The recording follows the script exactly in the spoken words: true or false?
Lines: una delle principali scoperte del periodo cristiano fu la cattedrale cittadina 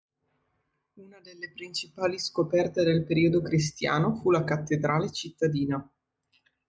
true